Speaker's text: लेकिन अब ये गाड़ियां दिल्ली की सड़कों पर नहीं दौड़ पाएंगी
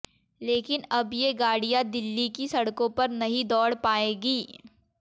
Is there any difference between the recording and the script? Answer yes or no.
no